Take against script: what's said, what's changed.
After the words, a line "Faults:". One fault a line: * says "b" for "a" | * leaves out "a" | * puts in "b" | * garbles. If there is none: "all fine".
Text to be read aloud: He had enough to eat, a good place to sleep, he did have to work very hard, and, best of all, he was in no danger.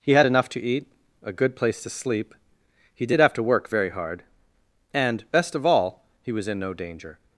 He had enough to eat, a good place to sleep, he did have to work very hard, and, best of all, he was in no danger.
Faults:
all fine